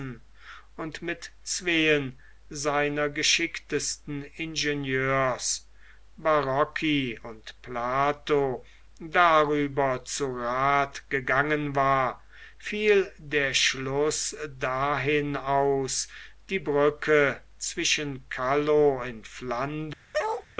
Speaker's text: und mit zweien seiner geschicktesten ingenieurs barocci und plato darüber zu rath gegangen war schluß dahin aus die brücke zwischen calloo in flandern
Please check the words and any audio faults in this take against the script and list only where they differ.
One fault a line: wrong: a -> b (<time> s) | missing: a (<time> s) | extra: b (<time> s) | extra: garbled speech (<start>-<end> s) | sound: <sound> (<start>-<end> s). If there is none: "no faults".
extra: fiel der (12.6 s)
sound: bark (20.1-20.5 s)